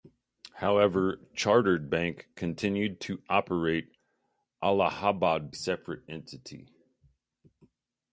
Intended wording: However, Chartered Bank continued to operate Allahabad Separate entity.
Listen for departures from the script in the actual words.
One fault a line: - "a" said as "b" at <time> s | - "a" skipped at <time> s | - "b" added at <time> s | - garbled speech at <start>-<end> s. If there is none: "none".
none